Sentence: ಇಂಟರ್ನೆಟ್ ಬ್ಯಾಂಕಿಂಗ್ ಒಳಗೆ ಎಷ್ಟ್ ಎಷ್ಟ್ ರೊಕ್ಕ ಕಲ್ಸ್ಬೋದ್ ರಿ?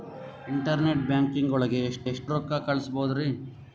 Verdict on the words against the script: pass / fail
pass